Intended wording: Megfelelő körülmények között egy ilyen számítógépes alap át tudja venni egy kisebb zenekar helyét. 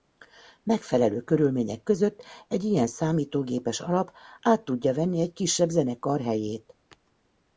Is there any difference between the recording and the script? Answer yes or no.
no